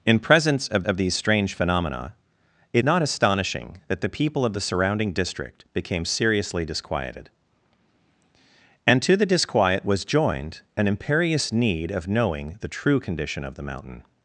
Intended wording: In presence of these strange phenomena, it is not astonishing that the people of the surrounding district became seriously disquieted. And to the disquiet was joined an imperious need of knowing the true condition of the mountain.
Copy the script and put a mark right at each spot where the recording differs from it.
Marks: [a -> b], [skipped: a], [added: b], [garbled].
In presence of [added: of] these strange phenomena, it [skipped: is] not astonishing that the people of the surrounding district became seriously disquieted. And to the disquiet was joined an imperious need of knowing the true condition of the mountain.